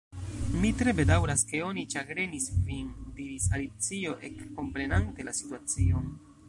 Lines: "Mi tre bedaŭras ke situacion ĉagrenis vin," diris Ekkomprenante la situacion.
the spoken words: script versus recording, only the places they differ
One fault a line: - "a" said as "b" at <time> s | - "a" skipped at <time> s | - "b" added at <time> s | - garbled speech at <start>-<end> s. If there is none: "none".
- "situacion" said as "oni" at 1.6 s
- "Alicio" added at 3.6 s